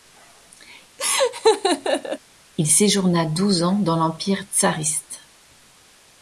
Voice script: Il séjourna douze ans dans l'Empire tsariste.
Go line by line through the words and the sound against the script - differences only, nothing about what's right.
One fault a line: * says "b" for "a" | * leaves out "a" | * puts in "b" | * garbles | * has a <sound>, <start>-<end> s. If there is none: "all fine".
* has a laugh, 1.0-2.2 s